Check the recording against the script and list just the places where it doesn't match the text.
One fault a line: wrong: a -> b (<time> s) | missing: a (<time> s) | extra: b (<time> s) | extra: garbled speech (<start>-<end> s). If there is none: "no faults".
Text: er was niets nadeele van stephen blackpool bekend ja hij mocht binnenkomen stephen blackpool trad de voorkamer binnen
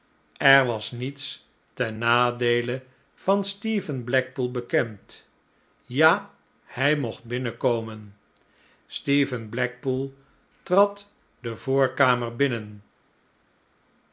extra: ten (1.7 s)